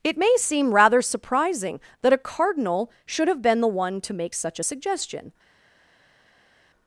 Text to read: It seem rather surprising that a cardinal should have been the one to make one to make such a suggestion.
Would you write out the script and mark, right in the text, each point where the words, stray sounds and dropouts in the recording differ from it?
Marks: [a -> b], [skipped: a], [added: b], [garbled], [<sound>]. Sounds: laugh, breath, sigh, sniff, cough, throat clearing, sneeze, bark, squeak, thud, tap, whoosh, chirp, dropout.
It [added: may] seem rather surprising that a cardinal should have been the one to make [skipped: one to make] such a suggestion.